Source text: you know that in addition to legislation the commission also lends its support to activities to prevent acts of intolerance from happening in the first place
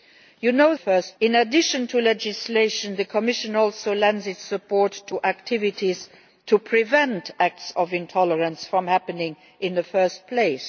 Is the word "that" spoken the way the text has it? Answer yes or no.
no